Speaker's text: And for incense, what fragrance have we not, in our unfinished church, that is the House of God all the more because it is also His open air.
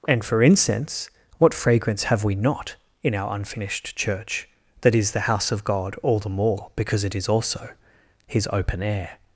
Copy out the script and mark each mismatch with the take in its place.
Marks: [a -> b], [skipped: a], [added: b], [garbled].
And for incense, what fragrance have we not, in our unfinished church, that is the House of God all the more because it is also His open air.